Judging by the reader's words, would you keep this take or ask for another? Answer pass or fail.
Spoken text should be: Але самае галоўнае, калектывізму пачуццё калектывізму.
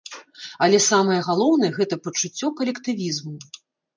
fail